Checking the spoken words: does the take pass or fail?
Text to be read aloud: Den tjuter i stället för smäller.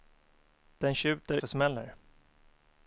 fail